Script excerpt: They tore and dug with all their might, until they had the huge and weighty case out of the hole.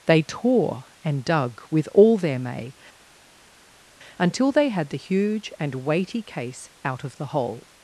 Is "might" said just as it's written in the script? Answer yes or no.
no